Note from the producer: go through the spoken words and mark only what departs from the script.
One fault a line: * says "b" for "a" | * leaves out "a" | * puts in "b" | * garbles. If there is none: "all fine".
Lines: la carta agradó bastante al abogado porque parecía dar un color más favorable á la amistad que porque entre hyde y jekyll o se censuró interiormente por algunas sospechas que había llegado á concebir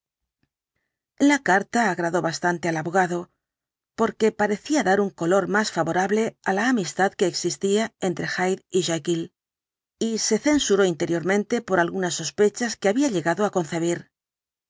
* says "existía" for "porque"
* says "y" for "o"